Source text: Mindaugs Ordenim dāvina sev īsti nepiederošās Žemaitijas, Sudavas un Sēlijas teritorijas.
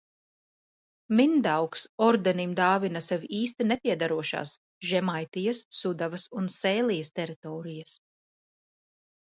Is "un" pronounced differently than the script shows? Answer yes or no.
no